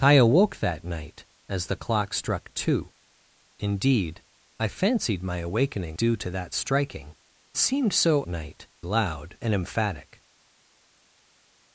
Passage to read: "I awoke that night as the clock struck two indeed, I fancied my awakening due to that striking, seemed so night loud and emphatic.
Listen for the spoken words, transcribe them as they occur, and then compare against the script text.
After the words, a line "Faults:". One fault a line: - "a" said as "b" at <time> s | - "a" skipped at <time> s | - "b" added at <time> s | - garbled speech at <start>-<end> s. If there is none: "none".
"I awoke that night as the clock struck two indeed, I fancied my awakening due to that striking, seemed so night loud and emphatic.
Faults:
none